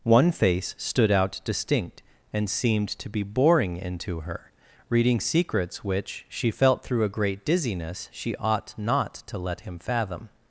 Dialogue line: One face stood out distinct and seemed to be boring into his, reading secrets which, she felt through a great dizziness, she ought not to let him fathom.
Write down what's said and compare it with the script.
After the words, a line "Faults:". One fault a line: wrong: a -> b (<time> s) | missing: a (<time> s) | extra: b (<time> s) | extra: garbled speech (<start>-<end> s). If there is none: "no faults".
One face stood out distinct and seemed to be boring into her, reading secrets which, she felt through a great dizziness, she ought not to let him fathom.
Faults:
wrong: his -> her (4.2 s)